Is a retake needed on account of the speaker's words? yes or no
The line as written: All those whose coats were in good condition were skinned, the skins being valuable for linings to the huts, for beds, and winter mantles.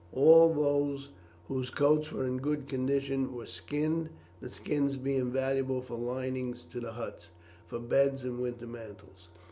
no